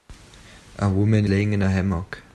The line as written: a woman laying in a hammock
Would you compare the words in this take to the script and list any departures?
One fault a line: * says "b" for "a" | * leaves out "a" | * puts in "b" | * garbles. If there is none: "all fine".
all fine